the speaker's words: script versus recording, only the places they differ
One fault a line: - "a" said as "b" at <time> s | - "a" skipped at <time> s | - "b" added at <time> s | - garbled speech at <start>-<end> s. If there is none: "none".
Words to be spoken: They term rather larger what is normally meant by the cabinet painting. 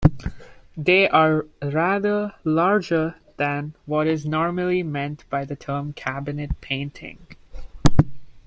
- "term" said as "are" at 1.1 s
- "than" added at 3.4 s
- "term" added at 5.5 s